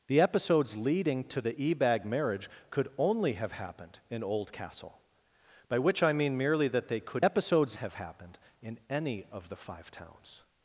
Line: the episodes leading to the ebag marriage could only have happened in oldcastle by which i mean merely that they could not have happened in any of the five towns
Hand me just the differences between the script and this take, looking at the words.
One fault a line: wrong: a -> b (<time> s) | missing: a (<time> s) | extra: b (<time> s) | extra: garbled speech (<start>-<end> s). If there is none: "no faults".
wrong: not -> episodes (7.2 s)